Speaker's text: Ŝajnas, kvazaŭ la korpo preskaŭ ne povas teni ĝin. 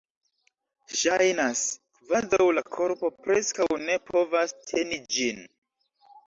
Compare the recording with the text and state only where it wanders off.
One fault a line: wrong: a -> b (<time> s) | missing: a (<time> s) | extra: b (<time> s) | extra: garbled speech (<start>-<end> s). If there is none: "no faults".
no faults